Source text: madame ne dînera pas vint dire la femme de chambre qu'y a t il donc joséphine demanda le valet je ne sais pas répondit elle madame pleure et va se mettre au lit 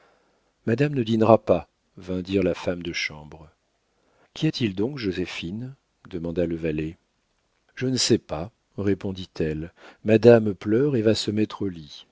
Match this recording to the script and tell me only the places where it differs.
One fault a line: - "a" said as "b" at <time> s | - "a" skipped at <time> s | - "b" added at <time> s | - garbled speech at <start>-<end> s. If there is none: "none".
none